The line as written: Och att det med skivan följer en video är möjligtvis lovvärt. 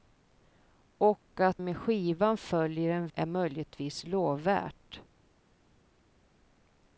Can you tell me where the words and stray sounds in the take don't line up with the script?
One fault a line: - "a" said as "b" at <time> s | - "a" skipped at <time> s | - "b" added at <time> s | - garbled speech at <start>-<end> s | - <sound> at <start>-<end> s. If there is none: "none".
- "det" skipped at 1.6 s
- "video" skipped at 3.1 s